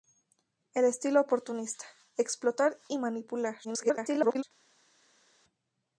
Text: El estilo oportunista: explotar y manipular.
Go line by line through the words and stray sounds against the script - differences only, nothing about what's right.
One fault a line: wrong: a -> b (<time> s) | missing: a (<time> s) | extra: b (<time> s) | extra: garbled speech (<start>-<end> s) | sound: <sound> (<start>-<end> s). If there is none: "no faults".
extra: garbled speech (3.6-4.4 s)